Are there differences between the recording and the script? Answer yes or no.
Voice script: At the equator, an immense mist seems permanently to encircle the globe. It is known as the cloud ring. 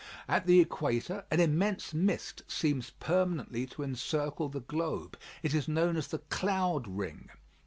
no